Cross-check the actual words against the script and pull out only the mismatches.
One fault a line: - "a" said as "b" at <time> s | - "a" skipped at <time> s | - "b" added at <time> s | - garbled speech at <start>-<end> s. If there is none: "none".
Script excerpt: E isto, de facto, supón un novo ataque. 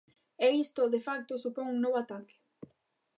none